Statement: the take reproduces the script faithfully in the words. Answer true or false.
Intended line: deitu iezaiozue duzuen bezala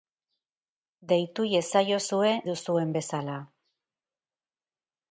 true